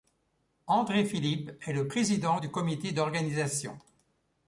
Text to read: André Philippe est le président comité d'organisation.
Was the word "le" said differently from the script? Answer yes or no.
no